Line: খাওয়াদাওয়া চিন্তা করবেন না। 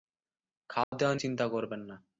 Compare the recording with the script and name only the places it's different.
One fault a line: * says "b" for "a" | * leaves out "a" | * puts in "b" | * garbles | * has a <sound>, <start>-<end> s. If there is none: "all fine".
* has a dropout, 0.8-0.9 s